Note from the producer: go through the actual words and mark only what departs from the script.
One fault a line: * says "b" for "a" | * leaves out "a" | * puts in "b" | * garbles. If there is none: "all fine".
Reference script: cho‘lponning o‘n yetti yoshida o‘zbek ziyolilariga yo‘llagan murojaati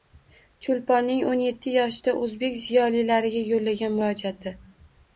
all fine